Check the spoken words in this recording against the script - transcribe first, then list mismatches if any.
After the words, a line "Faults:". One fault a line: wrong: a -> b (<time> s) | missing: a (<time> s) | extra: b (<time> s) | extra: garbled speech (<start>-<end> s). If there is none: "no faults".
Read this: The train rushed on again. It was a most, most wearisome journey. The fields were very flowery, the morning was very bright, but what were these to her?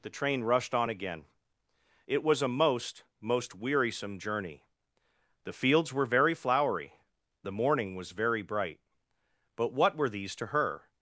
The train rushed on again. It was a most, most wearisome journey. The fields were very flowery, the morning was very bright, but what were these to her?
Faults:
no faults